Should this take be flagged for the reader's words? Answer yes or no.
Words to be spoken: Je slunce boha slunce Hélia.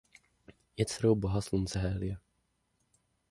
yes